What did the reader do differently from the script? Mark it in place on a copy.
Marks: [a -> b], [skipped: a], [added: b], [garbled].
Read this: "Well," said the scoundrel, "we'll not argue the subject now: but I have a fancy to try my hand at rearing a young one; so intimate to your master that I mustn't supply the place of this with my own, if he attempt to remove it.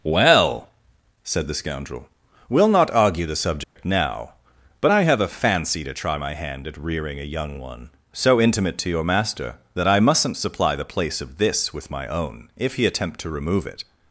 "Well," said the scoundrel, "we'll not argue the subject now: but I have a fancy to try my hand at rearing a young one; so intimate to your master that I mustn't supply the place of this with my own, if he attempt to remove it.